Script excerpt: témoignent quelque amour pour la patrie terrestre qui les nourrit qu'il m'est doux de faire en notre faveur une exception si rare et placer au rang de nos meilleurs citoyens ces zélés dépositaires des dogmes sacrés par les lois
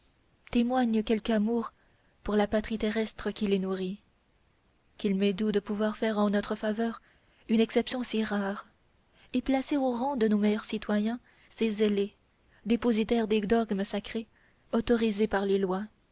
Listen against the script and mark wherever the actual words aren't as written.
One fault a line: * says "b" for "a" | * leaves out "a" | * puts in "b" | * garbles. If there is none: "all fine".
* puts in "pouvoir"
* puts in "autorisés"